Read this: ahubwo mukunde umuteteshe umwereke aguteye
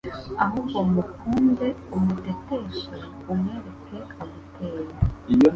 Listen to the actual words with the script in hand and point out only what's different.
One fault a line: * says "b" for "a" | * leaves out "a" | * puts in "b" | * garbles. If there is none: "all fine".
all fine